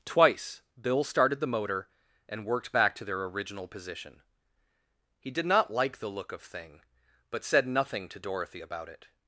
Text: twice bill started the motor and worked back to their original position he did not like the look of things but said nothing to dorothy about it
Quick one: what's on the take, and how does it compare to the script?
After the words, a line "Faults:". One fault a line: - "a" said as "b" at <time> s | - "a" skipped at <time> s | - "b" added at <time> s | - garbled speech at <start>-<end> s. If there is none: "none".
twice bill started the motor and worked back to their original position he did not like the look of thing but said nothing to dorothy about it
Faults:
- "things" said as "thing" at 6.4 s